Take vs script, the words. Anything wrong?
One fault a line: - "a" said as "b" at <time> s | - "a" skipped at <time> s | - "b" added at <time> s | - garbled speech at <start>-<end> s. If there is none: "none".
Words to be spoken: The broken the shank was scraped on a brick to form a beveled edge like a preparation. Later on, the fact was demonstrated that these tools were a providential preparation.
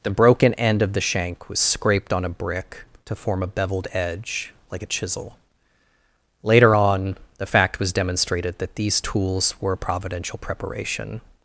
- "end of" added at 0.6 s
- "preparation" said as "chisel" at 4.9 s